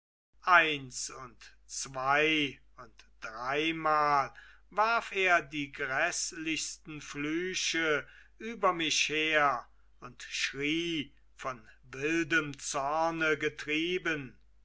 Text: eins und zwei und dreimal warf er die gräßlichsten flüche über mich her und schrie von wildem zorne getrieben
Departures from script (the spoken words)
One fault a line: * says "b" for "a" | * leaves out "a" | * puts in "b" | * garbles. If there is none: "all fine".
all fine